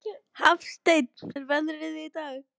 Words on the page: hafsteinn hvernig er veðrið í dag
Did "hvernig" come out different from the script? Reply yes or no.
yes